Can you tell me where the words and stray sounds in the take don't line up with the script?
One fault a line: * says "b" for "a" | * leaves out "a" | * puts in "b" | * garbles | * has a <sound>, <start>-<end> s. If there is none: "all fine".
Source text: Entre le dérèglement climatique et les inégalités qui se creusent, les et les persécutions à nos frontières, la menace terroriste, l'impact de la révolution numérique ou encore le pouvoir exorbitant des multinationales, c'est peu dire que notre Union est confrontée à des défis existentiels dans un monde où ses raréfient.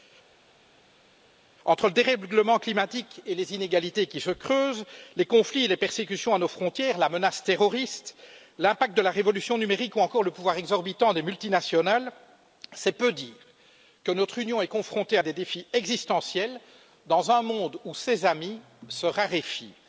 * puts in "conflits"
* puts in "amis se"